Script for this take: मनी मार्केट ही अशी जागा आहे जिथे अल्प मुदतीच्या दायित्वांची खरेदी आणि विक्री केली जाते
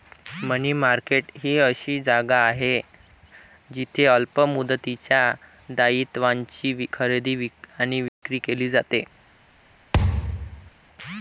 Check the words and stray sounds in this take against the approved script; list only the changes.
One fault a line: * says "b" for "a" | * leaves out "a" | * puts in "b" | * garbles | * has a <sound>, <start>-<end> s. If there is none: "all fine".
* has a dropout, 8.1-8.2 s
* has a thud, 9.9-10.7 s